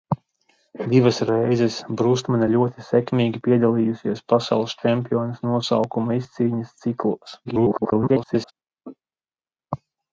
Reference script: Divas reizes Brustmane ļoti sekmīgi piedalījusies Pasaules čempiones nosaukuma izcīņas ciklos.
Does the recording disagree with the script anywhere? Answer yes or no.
yes